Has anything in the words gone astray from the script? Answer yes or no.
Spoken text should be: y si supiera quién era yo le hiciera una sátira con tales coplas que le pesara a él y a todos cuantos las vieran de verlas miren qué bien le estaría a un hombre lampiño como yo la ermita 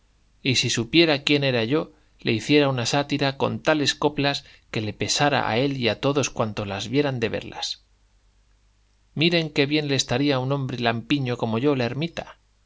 no